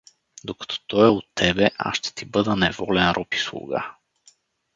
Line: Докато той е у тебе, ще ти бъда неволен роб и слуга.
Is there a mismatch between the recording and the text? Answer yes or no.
yes